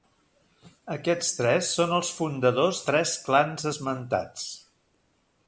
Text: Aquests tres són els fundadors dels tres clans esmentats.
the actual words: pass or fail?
fail